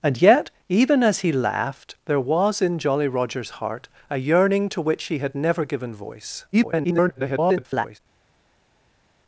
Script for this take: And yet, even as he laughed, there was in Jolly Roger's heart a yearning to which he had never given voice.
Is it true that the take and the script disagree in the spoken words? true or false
true